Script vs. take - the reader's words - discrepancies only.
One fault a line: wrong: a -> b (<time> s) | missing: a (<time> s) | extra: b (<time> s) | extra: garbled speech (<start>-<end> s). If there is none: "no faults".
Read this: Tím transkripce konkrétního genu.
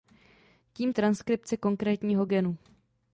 no faults